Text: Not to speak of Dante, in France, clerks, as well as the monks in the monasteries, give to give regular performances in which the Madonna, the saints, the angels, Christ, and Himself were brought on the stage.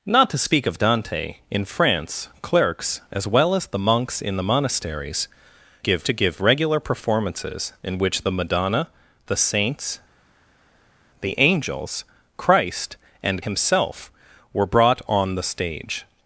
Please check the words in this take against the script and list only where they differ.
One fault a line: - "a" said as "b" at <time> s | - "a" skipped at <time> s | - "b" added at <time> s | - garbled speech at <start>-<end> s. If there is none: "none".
none